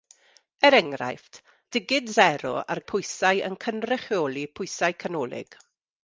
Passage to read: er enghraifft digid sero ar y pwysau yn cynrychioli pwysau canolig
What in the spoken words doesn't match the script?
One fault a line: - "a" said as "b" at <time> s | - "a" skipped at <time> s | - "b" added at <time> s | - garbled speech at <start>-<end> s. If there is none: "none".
none